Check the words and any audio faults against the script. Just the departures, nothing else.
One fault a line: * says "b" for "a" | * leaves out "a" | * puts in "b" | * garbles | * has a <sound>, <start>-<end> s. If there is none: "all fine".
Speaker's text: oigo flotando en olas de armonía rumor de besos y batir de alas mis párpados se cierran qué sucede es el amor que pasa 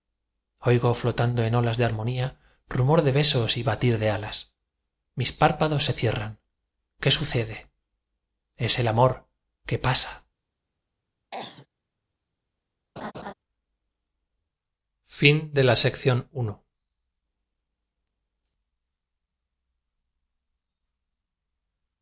* has a cough, 11.3-11.7 s
* has a laugh, 13.0-13.3 s